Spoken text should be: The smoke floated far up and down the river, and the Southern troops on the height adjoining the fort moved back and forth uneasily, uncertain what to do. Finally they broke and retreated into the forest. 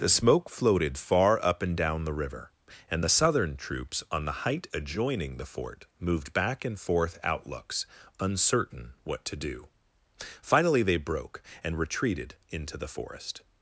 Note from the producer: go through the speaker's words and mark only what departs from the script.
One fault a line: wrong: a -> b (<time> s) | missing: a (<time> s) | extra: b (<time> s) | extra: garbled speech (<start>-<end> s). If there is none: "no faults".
wrong: uneasily -> outlooks (7.2 s)